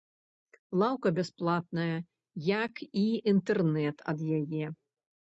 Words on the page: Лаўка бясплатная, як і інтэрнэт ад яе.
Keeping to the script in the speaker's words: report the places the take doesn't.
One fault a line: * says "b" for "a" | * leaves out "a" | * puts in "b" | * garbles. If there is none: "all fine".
all fine